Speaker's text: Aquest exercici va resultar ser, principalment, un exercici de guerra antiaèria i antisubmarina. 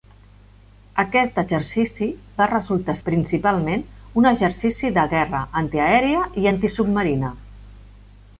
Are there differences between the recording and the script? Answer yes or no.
yes